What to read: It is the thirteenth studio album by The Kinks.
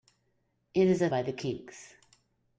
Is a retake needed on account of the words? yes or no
yes